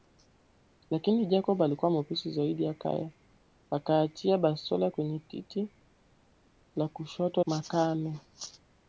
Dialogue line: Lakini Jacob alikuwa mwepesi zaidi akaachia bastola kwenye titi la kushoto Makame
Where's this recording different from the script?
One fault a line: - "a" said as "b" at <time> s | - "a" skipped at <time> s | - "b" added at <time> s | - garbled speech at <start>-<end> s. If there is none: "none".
none